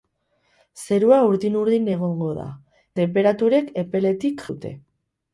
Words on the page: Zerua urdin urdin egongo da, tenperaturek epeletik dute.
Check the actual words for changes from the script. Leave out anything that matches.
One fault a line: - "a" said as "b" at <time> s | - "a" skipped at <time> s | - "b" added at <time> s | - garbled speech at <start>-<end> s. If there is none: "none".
none